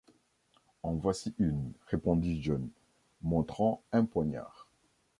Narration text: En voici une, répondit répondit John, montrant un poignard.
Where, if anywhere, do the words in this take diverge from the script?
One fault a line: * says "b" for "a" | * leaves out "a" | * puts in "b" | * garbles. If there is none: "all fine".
* leaves out "répondit"